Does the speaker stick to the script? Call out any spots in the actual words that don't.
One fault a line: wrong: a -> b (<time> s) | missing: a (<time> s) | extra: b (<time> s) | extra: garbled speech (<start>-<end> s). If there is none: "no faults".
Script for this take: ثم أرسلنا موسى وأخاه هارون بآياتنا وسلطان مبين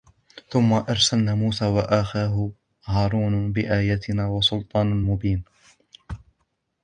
no faults